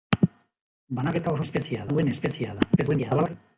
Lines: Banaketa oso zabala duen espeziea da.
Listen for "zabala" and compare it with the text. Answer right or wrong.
wrong